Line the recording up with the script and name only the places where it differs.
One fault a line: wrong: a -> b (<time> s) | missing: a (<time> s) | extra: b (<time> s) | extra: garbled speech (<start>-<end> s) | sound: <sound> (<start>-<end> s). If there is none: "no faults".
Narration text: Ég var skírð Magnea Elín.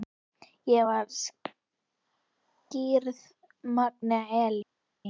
no faults